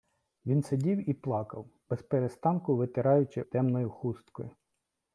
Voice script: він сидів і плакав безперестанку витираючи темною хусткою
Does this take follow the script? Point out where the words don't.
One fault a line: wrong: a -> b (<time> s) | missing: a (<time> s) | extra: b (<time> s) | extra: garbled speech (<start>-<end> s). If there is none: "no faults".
no faults